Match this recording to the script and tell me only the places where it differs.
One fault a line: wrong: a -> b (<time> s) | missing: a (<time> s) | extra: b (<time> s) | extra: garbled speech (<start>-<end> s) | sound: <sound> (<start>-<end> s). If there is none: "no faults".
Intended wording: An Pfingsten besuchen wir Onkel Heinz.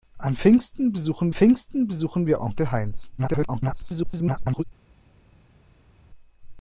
extra: Pfingsten besuchen (1.3 s)
extra: garbled speech (3.2-4.6 s)